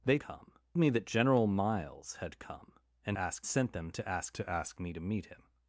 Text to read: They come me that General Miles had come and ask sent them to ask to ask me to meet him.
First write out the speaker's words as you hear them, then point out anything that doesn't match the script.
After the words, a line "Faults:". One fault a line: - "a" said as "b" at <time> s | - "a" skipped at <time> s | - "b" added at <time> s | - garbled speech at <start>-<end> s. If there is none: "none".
They come me that General Miles had come and ask sent them to ask to ask me to meet him.
Faults:
none